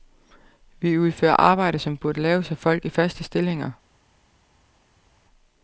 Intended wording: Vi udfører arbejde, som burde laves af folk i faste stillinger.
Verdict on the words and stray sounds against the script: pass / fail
pass